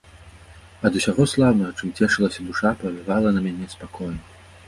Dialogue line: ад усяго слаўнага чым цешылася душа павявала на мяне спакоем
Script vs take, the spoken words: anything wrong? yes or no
no